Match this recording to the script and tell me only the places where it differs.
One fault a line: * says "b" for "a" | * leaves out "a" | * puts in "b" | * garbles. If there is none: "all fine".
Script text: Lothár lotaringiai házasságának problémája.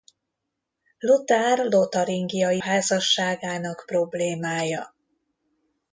all fine